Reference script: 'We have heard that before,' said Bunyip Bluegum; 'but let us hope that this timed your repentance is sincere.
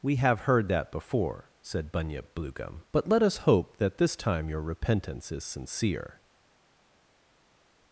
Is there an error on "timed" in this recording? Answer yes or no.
yes